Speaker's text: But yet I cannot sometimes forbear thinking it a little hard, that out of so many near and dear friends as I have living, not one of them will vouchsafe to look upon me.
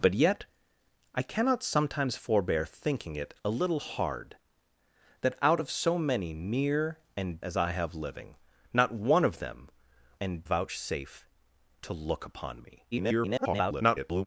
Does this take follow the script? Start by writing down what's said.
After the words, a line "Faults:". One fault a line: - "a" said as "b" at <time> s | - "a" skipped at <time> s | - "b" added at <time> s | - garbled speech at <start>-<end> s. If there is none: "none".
But yet I cannot sometimes forbear thinking it a little hard, that out of so many near and as I have living, not one of them and vouchsafe to look upon me. [garbled]
Faults:
- "dear friends" skipped at 7.4 s
- "will" said as "and" at 10.2 s
- garbled speech at 12.9-14.3 s